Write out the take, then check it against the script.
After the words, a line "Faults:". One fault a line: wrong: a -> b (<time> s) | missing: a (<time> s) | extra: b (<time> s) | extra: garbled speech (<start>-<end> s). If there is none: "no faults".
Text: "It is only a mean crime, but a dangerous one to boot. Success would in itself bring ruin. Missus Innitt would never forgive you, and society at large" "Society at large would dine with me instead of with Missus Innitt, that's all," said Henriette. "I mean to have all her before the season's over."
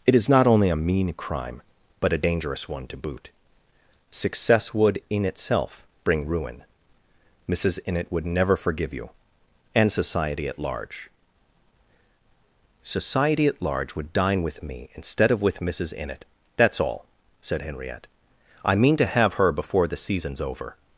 "It is not only a mean crime, but a dangerous one to boot. Success would in itself bring ruin. Missus Innitt would never forgive you, and society at large" "Society at large would dine with me instead of with Missus Innitt, that's all," said Henriette. "I mean to have her before the season's over."
Faults:
extra: not (0.3 s)
missing: all (19.3 s)